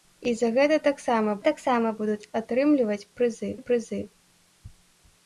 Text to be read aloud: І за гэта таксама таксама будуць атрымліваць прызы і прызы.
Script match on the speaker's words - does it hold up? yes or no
yes